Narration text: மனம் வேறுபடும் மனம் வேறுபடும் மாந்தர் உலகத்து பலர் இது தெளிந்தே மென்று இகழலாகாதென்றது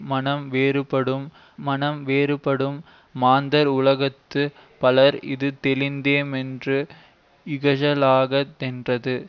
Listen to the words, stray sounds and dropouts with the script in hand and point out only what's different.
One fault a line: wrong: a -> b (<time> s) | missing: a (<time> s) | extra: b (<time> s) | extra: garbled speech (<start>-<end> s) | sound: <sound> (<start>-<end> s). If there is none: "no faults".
no faults